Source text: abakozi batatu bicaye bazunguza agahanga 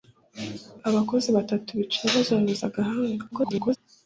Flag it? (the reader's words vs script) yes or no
yes